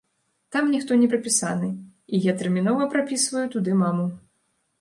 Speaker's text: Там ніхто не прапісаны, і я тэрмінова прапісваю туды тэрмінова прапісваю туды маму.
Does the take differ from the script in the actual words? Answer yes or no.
yes